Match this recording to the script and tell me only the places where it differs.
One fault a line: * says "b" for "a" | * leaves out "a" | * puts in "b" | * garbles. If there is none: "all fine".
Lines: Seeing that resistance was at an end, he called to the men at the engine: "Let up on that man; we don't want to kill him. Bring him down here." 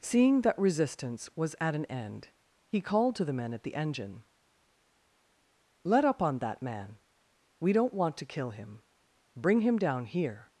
all fine